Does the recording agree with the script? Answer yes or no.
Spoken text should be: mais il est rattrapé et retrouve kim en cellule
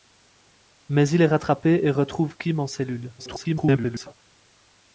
no